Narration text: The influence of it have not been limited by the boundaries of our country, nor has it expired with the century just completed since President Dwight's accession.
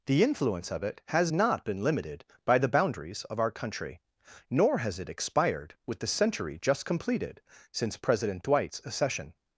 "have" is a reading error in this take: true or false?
true